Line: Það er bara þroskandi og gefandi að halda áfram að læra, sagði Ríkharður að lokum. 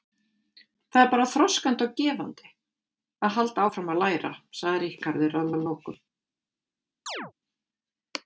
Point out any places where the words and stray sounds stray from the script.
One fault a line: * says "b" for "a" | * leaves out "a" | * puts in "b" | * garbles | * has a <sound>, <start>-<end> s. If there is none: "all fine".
* puts in "að"
* has a chirp, 7.1-7.3 s